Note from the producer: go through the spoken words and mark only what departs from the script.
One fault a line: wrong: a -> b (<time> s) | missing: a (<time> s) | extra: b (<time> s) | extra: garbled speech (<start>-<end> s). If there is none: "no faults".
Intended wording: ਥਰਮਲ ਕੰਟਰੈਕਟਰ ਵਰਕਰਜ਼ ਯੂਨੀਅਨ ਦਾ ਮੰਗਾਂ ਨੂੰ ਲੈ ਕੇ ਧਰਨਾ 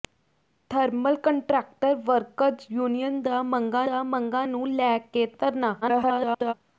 extra: ਦਾ ਮੰਗਾਂ (3.8 s)
extra: garbled speech (5.8-6.5 s)